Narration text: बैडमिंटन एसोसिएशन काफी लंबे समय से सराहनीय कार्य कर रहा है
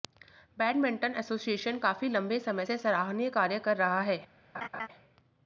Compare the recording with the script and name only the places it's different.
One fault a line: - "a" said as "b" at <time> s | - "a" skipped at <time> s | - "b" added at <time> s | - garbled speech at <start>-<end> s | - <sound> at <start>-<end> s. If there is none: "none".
- laugh at 4.5-4.9 s